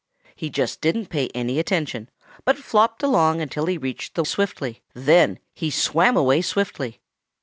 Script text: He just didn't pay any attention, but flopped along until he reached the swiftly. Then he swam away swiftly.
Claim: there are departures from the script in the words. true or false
false